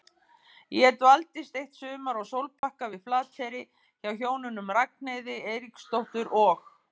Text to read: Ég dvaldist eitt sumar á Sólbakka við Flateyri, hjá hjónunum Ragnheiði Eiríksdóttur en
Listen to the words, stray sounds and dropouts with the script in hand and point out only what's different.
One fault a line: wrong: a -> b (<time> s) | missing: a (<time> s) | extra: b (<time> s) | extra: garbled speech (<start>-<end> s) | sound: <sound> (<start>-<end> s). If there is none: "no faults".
sound: dropout (2.6-2.6 s)
wrong: en -> og (6.5 s)